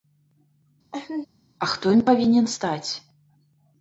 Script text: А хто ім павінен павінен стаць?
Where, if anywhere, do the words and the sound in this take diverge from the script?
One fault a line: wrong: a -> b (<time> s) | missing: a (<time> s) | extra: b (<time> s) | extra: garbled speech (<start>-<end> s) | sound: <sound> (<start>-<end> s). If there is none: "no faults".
sound: laugh (0.9-1.3 s)
missing: павінен (2.5 s)